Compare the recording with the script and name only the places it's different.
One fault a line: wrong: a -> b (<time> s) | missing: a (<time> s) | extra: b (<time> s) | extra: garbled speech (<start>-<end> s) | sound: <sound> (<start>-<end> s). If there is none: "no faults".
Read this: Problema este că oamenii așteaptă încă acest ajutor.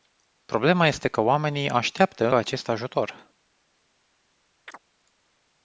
missing: încă (2.3 s)
sound: chirp (4.7-4.8 s)